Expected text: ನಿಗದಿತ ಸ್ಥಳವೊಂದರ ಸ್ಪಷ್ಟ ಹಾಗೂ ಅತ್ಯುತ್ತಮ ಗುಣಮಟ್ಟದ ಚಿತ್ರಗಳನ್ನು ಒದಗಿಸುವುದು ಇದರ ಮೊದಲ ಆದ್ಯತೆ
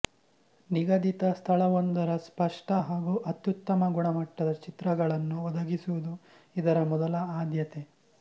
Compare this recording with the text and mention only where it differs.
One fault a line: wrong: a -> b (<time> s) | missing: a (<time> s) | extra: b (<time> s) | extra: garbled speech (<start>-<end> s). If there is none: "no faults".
no faults